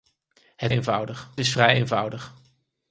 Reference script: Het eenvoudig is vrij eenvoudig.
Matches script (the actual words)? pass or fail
pass